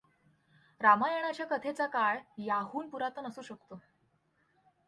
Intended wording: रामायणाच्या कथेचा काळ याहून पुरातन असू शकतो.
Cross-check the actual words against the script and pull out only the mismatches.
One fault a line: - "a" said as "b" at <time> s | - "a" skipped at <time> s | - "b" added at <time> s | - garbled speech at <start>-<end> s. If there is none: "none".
none